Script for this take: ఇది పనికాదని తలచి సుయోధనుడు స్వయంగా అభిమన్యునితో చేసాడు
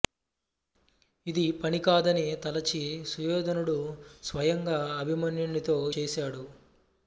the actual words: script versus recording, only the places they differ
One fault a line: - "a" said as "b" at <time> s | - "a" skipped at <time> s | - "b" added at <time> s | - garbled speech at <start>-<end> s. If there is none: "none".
none